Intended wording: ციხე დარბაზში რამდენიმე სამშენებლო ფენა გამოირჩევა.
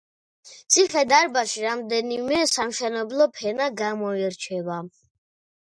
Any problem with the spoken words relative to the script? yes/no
no